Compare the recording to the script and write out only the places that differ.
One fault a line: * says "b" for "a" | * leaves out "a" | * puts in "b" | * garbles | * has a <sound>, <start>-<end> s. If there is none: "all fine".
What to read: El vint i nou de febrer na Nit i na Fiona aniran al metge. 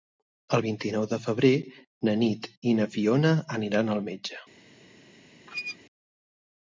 * has a squeak, 5.5-5.8 s